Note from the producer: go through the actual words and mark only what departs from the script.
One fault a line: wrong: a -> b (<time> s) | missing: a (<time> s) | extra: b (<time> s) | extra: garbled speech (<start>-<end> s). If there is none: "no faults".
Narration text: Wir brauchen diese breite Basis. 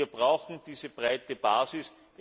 no faults